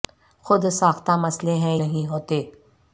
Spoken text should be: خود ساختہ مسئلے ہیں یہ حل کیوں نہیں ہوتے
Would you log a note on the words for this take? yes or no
yes